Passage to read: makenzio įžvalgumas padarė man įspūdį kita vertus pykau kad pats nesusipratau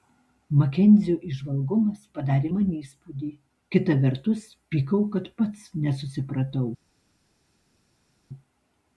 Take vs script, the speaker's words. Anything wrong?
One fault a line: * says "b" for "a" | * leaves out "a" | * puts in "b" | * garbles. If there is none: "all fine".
all fine